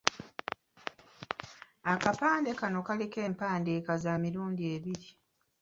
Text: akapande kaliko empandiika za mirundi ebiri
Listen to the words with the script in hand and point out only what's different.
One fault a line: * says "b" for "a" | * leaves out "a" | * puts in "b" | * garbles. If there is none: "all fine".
* puts in "kano"